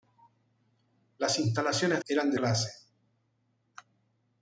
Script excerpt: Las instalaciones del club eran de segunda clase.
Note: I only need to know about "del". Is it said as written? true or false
false